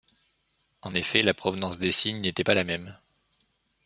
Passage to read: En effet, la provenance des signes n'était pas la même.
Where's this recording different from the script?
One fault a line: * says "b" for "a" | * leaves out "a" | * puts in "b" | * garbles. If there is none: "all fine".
all fine